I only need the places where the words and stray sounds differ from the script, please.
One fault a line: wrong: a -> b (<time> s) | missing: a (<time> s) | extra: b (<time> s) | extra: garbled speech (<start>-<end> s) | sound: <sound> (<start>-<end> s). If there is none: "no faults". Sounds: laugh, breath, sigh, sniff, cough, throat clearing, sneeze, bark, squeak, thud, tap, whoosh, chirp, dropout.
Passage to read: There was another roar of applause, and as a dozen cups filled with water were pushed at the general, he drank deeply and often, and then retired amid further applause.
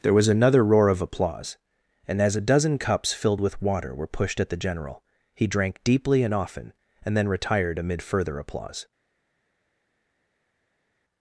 no faults